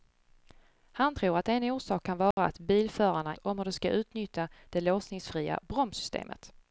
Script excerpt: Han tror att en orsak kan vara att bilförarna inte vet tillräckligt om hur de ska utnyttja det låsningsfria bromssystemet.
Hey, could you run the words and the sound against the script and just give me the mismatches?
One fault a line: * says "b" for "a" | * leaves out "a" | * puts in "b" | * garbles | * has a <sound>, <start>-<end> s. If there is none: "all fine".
* has a dropout, 2.3-2.4 s
* leaves out "inte vet tillräckligt"